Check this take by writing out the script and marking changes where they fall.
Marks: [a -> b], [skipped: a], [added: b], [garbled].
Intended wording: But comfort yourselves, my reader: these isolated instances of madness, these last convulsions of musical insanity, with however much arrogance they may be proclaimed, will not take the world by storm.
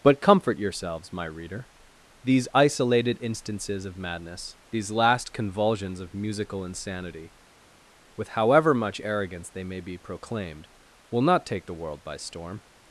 But comfort yourselves, my reader: these isolated instances of madness, these last convulsions of musical insanity, with however much arrogance they may be proclaimed, will not take the world by storm.